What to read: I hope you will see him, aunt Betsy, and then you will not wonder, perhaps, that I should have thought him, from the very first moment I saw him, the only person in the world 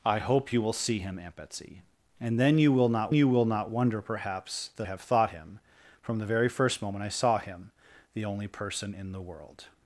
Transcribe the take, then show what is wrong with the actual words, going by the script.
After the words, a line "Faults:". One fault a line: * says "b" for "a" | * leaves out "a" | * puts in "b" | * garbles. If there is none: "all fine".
I hope you will see him, aunt Betsy, and then you will not you will not wonder, perhaps, that have thought him, from the very first moment I saw him, the only person in the world
Faults:
* puts in "you will not"
* leaves out "I should"